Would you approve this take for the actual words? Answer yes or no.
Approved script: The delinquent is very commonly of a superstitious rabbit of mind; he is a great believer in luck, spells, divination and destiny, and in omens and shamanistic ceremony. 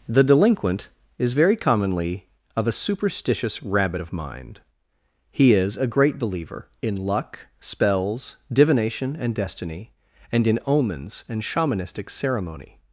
yes